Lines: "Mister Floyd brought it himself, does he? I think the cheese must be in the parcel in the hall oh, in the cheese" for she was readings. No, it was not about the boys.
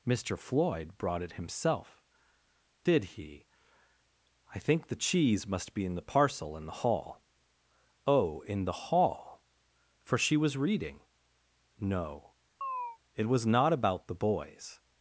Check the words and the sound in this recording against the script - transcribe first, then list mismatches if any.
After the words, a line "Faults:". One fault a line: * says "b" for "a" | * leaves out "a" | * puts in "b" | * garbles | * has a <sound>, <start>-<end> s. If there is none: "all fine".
"Mister Floyd brought it himself, did he? I think the cheese must be in the parcel in the hall oh, in the hall" for she was reading. No, it was not about the boys.
Faults:
* says "did" for "does"
* says "hall" for "cheese"
* says "reading" for "readings"
* has a chirp, 12.6-13.0 s